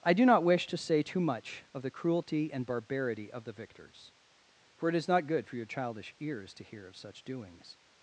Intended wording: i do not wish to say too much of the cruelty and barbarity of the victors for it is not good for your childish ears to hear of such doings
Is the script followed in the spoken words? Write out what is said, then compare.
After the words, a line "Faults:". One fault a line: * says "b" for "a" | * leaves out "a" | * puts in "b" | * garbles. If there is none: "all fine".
i do not wish to say too much of the cruelty and barbarity of the victors for it is not good for your childish ears to hear of such doings
Faults:
all fine